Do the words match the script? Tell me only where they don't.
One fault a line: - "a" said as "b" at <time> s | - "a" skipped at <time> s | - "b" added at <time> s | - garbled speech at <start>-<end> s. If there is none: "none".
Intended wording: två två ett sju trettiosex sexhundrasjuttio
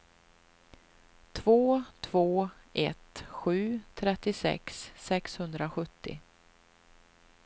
none